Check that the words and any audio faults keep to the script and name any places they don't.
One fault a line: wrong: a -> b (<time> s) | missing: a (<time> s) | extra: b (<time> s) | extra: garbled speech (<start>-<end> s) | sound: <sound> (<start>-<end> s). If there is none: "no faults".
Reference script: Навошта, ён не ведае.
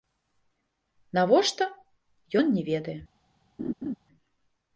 sound: laugh (3.6-4.0 s)